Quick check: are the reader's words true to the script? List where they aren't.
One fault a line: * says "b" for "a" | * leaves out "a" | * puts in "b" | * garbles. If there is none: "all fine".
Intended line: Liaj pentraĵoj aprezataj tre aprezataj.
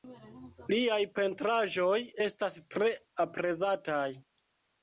* says "estas" for "aprezataj"